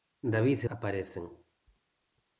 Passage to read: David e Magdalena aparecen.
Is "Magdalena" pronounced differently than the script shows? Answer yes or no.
yes